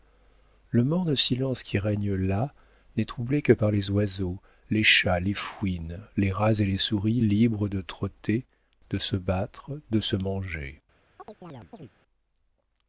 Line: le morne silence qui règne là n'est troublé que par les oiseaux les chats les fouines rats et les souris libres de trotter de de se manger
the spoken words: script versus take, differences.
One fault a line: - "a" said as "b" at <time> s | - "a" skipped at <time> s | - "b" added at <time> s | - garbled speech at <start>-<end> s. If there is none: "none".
- "les" added at 6.2 s
- "se battre" added at 9.0 s